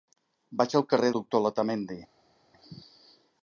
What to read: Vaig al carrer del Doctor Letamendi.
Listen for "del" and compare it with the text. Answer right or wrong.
wrong